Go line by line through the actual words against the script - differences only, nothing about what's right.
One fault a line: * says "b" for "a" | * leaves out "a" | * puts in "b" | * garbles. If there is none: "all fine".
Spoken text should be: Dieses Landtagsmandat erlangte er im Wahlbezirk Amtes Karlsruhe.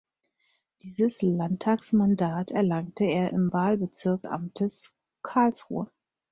all fine